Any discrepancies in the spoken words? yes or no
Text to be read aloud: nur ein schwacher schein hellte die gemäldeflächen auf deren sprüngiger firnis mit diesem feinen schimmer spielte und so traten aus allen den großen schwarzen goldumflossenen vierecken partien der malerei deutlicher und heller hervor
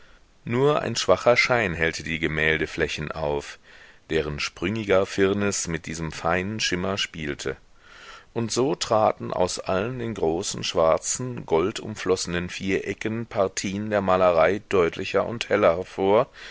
no